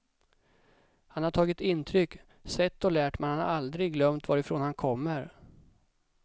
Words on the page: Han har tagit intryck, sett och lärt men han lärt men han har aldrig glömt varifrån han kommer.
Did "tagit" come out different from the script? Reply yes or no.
no